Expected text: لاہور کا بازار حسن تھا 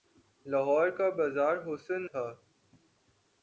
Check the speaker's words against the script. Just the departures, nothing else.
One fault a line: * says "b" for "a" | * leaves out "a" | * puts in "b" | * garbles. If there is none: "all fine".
all fine